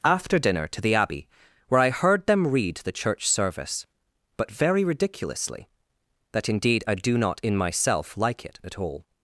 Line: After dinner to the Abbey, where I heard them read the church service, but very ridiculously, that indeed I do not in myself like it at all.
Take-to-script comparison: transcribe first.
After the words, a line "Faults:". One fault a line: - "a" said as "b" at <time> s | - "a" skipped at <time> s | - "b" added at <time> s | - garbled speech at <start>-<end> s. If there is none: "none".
After dinner to the Abbey, where I heard them read the church service, but very ridiculously, that indeed I do not in myself like it at all.
Faults:
none